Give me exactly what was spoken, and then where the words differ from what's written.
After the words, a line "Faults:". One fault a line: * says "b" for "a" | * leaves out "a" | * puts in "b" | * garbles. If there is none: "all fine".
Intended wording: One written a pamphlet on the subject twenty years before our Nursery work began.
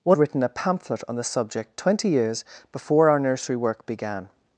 One written a pamphlet on the subject twenty years before our Nursery work began.
Faults:
all fine